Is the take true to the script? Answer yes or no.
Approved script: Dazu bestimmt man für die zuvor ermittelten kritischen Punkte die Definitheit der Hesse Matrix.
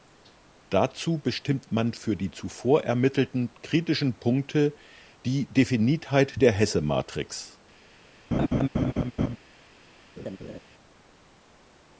yes